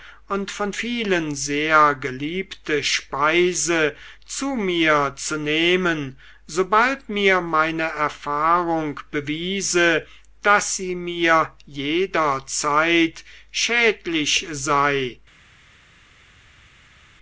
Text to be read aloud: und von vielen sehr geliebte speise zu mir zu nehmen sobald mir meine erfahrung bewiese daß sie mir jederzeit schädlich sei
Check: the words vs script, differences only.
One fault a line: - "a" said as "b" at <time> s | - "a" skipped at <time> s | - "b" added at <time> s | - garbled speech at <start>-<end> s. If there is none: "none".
none